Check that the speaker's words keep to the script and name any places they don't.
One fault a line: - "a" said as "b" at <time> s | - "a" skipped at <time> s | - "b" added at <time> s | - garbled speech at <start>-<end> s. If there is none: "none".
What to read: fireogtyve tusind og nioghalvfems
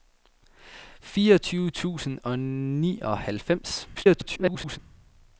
- garbled speech at 3.9-4.8 s